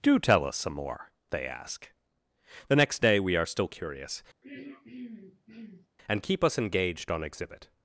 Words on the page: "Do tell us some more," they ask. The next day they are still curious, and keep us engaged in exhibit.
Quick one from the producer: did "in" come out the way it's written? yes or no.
no